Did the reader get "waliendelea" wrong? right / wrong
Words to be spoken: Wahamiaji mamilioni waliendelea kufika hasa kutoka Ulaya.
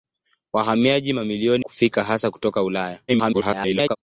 wrong